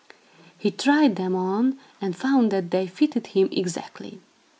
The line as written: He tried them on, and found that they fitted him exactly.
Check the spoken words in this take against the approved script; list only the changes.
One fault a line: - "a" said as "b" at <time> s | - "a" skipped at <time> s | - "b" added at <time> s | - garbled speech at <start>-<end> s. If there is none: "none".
none